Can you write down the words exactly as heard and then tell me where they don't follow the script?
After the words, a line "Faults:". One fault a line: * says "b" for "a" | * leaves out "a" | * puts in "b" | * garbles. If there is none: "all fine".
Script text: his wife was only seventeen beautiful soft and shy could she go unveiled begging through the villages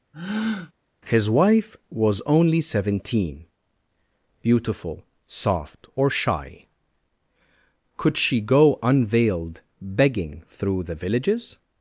his wife was only seventeen beautiful soft or shy could she go unveiled begging through the villages
Faults:
* says "or" for "and"